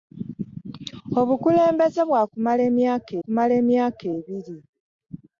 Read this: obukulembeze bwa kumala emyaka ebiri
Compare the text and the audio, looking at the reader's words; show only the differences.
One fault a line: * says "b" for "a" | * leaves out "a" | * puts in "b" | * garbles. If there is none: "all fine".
* puts in "kumala emyaka"